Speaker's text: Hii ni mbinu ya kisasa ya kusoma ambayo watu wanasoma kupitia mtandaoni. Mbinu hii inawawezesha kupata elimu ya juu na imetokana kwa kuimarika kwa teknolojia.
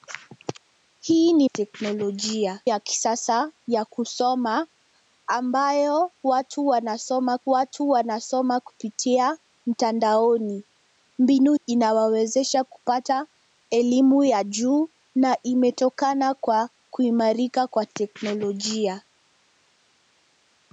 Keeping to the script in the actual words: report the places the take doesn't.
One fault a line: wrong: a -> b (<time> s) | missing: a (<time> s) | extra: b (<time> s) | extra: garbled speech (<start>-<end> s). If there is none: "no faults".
wrong: mbinu -> teknolojia (1.4 s)
extra: watu wanasoma (7.4 s)
missing: hii (11.5 s)